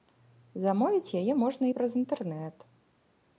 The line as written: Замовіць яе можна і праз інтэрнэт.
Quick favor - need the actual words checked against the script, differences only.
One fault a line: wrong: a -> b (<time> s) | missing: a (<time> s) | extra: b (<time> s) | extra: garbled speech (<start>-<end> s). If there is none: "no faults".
no faults